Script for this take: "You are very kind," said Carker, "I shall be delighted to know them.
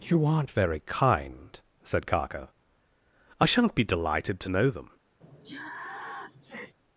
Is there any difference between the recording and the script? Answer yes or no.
yes